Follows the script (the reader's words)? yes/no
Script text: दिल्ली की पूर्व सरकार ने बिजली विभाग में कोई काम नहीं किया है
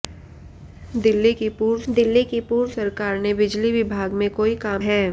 no